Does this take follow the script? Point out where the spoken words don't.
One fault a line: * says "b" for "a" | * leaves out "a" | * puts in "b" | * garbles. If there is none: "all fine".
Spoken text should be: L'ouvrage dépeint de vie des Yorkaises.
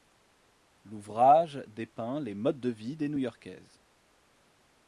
* puts in "les modes"
* puts in "New"